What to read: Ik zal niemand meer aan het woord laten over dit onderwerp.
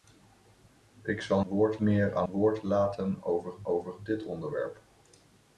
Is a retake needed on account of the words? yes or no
yes